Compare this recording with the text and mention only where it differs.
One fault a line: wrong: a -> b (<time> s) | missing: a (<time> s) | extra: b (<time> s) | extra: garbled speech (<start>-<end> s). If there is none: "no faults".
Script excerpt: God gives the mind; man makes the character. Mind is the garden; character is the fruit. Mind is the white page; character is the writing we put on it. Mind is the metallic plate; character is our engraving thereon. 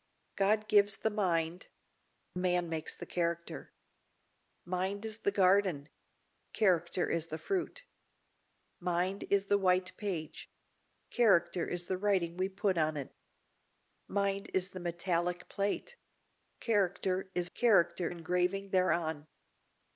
wrong: our -> character (17.5 s)